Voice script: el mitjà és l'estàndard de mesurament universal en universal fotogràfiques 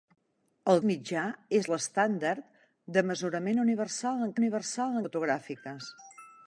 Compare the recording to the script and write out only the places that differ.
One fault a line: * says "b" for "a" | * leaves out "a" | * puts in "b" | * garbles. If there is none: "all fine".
all fine